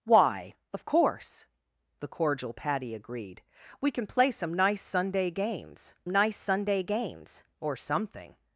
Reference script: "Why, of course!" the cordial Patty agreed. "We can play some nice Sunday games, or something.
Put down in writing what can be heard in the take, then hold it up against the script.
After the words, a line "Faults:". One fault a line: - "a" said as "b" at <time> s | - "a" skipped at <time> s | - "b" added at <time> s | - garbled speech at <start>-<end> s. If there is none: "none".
"Why, of course!" the cordial Patty agreed. "We can play some nice Sunday games nice Sunday games, or something.
Faults:
- "nice Sunday games" added at 6.1 s